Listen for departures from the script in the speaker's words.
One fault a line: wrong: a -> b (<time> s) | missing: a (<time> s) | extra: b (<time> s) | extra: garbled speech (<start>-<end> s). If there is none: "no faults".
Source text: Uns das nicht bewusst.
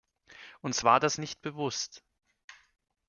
extra: war (0.8 s)